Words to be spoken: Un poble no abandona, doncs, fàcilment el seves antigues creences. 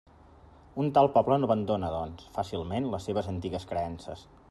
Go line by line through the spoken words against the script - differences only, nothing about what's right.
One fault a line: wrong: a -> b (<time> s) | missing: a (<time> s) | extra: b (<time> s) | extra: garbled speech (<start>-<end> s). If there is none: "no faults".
extra: tal (1.0 s)
wrong: el -> les (3.0 s)